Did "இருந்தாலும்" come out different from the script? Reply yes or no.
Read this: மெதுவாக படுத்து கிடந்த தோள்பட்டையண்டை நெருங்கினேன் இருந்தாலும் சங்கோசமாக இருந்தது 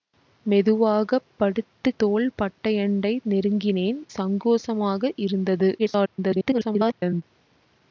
yes